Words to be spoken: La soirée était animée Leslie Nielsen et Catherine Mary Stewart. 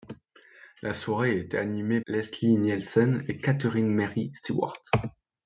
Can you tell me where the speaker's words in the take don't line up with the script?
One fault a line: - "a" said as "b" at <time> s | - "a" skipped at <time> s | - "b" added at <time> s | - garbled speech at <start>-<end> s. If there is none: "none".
none